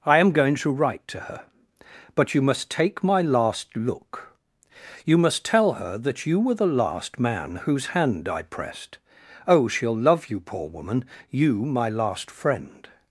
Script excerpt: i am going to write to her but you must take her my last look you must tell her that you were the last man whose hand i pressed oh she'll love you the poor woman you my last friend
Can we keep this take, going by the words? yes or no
no